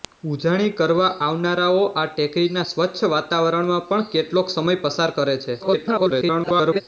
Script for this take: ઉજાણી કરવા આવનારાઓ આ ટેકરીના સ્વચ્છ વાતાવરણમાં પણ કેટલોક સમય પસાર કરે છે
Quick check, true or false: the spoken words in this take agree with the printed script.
false